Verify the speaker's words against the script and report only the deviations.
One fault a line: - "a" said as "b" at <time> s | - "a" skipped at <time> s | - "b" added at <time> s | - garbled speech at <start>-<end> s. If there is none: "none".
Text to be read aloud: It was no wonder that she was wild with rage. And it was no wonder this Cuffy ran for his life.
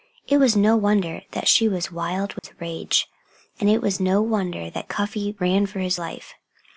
- "this" said as "that" at 4.7 s